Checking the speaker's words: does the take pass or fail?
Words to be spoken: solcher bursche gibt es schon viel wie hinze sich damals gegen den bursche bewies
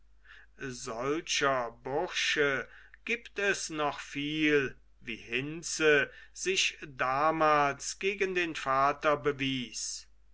fail